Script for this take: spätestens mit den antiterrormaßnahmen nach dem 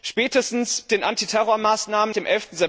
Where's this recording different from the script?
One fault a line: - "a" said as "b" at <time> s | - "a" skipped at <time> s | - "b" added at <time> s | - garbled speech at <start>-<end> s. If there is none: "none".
- "mit" skipped at 0.9 s
- "nach" skipped at 2.1 s